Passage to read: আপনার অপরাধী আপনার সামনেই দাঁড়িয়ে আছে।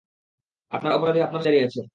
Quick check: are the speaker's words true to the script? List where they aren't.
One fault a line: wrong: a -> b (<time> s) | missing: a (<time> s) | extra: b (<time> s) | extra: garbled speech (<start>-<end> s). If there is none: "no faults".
missing: সামনেই (1.5 s)